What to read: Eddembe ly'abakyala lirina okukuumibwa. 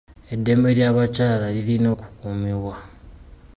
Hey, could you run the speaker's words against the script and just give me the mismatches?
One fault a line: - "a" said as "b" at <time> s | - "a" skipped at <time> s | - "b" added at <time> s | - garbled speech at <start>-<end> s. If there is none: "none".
none